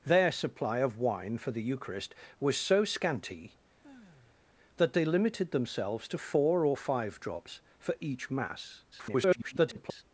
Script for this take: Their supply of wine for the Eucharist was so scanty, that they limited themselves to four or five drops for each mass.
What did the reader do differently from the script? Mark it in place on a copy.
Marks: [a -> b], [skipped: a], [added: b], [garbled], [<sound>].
Their supply of wine for the Eucharist was so scanty, [sigh] that they limited themselves to four or five drops for each mass. [garbled]